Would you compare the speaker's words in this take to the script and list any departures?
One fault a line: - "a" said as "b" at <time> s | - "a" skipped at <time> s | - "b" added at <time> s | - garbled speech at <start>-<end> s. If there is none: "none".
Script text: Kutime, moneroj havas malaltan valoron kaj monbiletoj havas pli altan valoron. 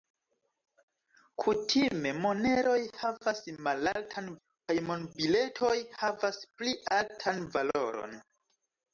- "valoron" skipped at 4.3 s